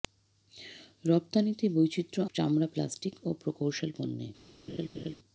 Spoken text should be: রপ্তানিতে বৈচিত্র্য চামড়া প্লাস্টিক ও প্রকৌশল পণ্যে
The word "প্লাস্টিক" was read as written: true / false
true